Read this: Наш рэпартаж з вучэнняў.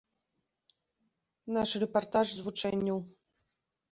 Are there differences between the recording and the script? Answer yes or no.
no